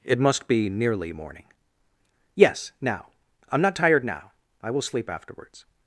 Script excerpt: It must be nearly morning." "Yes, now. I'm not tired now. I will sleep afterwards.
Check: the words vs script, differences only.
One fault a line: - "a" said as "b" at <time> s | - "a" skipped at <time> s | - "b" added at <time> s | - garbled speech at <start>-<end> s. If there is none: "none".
none